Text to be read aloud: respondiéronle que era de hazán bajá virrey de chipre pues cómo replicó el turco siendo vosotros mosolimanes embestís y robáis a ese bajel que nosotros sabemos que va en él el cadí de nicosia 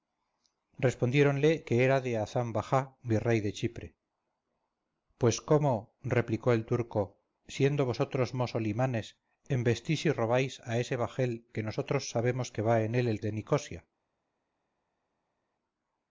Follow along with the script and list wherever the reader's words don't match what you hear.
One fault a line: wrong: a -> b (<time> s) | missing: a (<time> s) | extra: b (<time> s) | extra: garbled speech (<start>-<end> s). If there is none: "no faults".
missing: cadí (13.2 s)